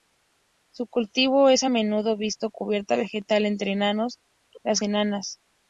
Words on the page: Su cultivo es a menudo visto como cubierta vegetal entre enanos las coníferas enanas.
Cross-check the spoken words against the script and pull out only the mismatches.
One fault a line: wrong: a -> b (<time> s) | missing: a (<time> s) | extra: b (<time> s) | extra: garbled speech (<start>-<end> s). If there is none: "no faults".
missing: como (2.5 s)
missing: coníferas (4.8 s)